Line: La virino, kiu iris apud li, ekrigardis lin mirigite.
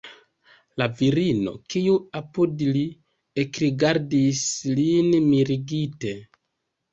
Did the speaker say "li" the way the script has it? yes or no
yes